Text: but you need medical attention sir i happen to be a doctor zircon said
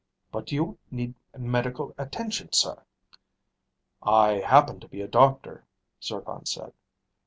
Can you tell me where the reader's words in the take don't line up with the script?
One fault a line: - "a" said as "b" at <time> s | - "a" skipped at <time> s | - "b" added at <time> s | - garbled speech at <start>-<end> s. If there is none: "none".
none